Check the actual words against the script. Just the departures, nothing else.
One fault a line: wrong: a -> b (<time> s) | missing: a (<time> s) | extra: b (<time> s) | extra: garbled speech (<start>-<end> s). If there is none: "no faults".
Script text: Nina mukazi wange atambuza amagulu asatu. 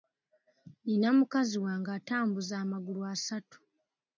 no faults